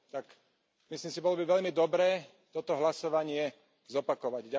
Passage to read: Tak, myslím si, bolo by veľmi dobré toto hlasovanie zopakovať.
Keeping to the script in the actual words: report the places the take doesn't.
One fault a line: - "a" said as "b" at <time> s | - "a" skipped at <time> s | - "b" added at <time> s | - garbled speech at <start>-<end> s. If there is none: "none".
none